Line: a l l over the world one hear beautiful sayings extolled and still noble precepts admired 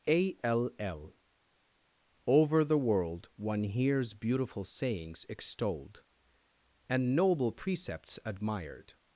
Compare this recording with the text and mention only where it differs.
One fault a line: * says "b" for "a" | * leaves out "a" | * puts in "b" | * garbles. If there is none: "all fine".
* says "hears" for "hear"
* leaves out "still"